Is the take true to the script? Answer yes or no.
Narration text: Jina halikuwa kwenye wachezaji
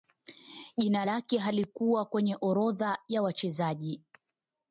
no